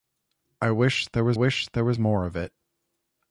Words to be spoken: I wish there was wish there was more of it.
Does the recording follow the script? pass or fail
pass